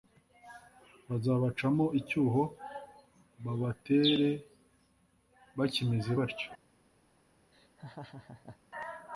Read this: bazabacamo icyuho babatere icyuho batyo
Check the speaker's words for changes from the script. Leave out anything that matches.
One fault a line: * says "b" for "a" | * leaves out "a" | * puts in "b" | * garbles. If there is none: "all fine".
* says "bakimeze" for "icyuho"